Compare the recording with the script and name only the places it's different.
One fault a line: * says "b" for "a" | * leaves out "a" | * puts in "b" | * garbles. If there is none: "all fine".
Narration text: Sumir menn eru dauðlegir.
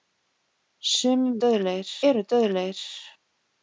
* says "dauðlegir" for "menn"